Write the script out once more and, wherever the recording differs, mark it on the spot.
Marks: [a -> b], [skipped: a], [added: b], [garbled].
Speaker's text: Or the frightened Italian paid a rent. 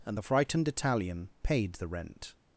[Or -> And] the frightened Italian paid [a -> the] rent.